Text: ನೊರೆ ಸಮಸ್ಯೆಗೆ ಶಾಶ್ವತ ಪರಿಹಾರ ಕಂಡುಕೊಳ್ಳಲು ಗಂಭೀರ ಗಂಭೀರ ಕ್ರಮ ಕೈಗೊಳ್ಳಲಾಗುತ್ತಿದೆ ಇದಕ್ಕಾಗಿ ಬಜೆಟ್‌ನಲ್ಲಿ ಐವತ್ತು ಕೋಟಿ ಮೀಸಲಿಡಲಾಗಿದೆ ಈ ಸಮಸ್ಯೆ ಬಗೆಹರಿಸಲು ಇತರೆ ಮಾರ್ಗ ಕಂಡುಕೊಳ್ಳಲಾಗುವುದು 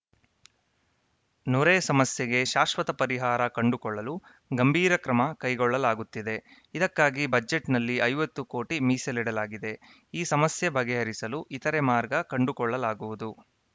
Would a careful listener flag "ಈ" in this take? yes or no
no